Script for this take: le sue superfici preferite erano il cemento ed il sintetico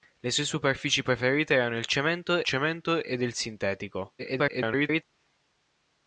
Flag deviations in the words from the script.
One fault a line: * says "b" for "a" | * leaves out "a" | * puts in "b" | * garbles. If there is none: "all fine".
* puts in "cemento"
* garbles